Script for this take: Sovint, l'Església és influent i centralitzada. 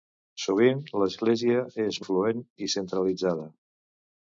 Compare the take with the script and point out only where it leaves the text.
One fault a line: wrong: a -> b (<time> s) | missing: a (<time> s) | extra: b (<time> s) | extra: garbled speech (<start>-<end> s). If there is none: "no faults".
no faults